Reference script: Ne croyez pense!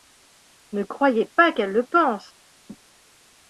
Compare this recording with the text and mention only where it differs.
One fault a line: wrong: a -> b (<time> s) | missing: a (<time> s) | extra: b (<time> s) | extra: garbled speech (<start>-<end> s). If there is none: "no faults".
extra: pas qu'elle le (1.4 s)